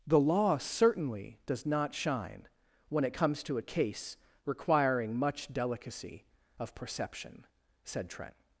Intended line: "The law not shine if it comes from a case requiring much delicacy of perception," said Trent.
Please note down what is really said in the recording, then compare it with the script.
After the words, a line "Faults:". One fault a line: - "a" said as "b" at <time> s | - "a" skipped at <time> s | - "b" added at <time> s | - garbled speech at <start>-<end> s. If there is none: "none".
"The law certainly does not shine when it comes to a case requiring much delicacy of perception," said Trent.
Faults:
- "certainly does" added at 0.6 s
- "if" said as "when" at 2.9 s
- "from" said as "to" at 3.4 s